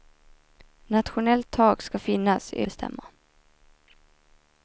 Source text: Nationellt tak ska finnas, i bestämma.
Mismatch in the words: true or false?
false